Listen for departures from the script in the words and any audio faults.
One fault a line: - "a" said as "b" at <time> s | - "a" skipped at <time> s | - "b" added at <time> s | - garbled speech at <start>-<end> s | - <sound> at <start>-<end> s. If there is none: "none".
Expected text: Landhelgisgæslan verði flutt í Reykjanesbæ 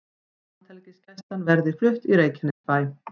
- dropout at 2.5-2.6 s